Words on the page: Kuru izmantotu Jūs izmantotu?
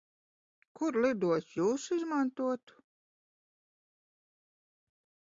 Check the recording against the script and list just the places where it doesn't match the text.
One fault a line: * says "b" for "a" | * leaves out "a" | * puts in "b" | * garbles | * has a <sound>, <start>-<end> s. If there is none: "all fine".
* says "lidostu" for "izmantotu"